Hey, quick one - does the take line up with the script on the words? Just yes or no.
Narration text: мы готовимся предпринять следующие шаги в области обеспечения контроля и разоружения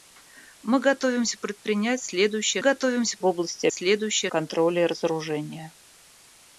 no